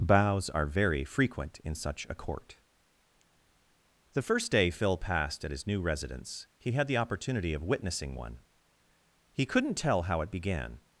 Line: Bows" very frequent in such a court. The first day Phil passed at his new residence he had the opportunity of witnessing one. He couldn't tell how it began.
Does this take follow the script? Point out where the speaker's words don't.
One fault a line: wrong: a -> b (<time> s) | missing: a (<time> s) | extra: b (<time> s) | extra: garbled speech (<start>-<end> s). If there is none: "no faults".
extra: are (0.5 s)